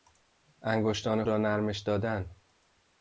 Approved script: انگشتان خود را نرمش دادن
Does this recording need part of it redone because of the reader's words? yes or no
yes